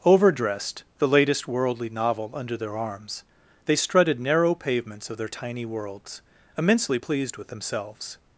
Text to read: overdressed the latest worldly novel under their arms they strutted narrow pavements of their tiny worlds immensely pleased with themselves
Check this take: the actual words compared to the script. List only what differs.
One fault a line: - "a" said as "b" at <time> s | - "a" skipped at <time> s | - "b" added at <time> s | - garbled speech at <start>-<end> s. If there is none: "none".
none